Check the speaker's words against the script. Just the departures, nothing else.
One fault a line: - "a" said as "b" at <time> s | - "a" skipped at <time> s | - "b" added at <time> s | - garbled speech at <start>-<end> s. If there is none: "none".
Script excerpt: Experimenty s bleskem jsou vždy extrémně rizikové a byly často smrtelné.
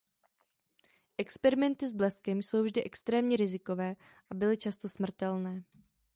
none